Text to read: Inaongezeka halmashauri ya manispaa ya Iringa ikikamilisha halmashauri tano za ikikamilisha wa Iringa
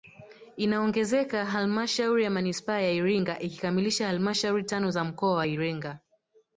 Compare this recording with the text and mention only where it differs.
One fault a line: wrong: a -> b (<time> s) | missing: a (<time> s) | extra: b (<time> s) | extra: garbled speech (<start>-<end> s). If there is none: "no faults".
wrong: ikikamilisha -> mkoa (5.0 s)